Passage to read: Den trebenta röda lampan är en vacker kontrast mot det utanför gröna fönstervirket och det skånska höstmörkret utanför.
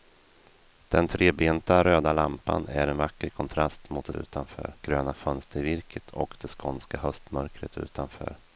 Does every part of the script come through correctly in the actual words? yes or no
yes